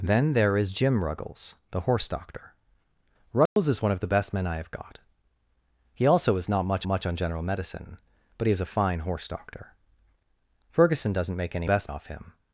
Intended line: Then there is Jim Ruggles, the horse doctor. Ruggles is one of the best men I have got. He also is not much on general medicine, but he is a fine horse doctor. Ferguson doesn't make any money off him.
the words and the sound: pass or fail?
fail